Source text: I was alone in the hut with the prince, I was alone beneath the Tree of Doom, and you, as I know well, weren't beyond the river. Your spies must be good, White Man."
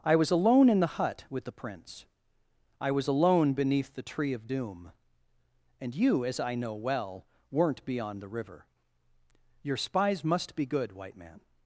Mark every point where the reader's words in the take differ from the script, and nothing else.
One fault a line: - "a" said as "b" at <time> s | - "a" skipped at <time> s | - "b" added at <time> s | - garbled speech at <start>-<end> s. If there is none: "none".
none